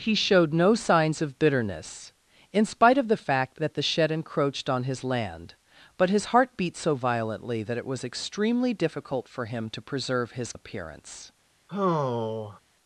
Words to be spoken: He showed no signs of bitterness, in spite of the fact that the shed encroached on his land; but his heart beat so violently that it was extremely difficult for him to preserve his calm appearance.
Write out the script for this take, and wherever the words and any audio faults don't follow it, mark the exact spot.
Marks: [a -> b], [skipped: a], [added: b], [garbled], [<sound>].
He showed no signs of bitterness, in spite of the fact that the shed encroached on his land; but his heart beat so violently that it was extremely difficult for him to preserve his [skipped: calm] appearance. [sigh]